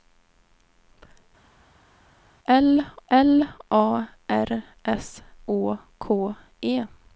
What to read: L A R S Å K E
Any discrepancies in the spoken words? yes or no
yes